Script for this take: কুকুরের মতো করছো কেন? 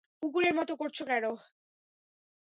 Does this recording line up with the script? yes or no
yes